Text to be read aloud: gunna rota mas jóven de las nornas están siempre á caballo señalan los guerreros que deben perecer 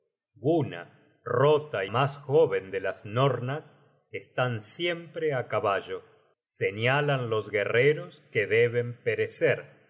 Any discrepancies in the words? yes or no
no